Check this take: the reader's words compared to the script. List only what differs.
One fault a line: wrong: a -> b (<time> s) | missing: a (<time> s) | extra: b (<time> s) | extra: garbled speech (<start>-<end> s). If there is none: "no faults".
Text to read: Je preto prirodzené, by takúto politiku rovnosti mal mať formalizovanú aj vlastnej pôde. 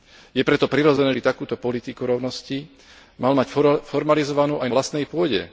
no faults